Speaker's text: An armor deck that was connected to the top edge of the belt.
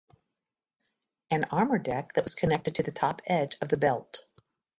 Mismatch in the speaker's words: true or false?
false